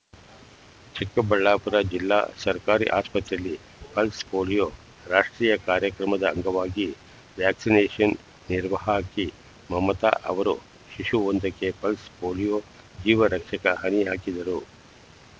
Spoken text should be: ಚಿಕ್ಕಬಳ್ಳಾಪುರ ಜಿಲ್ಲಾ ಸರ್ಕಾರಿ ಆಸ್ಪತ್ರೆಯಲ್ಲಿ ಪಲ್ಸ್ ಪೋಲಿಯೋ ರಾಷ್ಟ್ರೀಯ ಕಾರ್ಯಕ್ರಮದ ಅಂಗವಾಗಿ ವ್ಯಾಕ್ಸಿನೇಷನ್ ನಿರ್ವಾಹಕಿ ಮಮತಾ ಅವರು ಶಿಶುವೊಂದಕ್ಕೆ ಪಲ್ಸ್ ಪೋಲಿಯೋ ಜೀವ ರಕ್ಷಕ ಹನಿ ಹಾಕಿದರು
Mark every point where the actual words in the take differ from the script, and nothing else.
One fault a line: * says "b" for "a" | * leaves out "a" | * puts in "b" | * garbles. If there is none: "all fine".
all fine